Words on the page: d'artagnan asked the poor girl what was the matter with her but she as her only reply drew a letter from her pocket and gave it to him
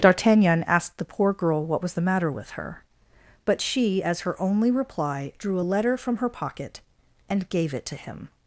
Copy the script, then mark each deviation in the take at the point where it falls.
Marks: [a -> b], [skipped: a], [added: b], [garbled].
d'artagnan asked the poor girl what was the matter with her but she as her only reply drew a letter from her pocket and gave it to him